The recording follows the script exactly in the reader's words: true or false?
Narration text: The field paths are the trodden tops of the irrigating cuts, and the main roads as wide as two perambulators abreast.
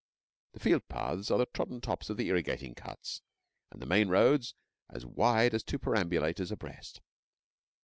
true